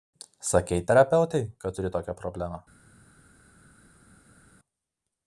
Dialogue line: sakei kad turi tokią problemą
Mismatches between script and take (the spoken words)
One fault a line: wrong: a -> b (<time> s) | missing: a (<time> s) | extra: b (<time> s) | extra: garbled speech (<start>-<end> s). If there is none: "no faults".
extra: terapeutei (0.9 s)